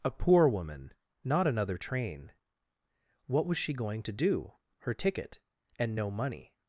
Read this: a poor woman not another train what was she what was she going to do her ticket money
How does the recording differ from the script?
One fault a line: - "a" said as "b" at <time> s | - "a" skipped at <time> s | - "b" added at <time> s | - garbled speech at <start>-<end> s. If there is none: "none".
- "what was she" skipped at 3.7 s
- "and no" added at 5.8 s